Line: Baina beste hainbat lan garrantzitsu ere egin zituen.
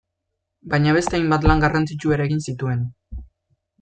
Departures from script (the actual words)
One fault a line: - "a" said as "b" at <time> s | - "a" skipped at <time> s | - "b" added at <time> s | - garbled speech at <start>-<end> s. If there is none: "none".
none